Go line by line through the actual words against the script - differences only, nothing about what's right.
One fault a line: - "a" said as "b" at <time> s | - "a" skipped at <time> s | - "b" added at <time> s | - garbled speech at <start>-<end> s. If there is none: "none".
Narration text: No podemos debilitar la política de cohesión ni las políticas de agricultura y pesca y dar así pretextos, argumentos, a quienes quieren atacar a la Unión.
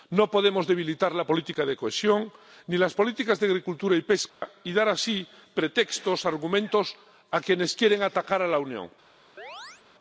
none